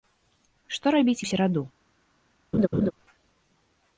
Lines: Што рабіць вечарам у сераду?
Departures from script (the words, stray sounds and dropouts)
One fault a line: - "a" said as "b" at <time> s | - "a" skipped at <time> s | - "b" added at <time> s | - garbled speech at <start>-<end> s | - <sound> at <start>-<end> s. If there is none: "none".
- "вечарам" skipped at 1.2 s
- laugh at 2.5-2.9 s